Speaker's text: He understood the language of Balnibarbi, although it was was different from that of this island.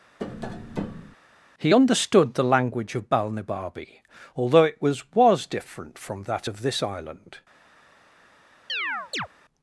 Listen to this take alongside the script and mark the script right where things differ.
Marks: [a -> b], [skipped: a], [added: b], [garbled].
He understood the language of Balnibarbi, although it was was different from that of this island.